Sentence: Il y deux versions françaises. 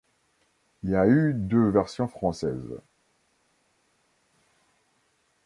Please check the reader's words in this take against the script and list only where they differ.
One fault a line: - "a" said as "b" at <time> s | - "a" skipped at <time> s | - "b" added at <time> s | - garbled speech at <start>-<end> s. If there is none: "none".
- "a eu" added at 0.9 s